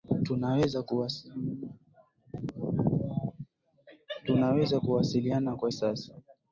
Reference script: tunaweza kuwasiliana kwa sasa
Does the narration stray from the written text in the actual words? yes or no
no